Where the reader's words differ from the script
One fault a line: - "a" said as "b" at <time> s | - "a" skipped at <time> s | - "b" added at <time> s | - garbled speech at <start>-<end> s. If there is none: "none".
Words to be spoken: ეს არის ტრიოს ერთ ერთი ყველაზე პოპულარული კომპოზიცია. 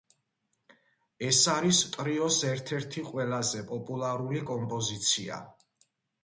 none